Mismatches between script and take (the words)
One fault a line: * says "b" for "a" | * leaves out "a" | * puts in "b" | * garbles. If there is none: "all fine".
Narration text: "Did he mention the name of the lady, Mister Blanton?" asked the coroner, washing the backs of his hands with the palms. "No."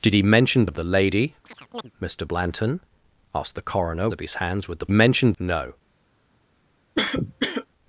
* leaves out "the name"
* leaves out "washing the backs"
* says "mention" for "palms"